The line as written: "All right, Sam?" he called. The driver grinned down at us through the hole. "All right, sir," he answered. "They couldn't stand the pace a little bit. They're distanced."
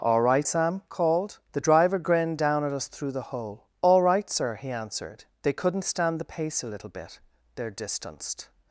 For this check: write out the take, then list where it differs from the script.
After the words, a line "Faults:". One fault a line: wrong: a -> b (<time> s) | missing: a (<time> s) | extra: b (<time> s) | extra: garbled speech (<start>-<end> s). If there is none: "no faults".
"All right, Sam?" called. The driver grinned down at us through the hole. "All right, sir," he answered. "They couldn't stand the pace a little bit. They're distanced."
Faults:
missing: he (0.8 s)